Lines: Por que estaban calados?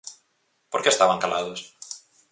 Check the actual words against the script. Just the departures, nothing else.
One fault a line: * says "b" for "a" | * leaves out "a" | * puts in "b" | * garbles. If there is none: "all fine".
all fine